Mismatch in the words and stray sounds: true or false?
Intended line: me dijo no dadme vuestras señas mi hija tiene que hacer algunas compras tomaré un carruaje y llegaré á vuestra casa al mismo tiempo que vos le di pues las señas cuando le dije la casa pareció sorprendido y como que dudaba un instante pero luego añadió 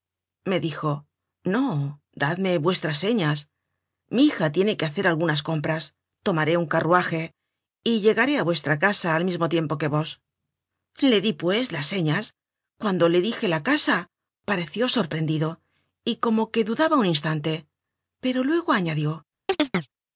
true